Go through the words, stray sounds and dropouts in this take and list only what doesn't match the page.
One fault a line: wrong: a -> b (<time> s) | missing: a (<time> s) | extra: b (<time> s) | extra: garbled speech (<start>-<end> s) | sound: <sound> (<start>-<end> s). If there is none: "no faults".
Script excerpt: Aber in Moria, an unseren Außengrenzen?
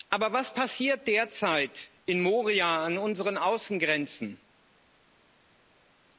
extra: was passiert derzeit (0.3 s)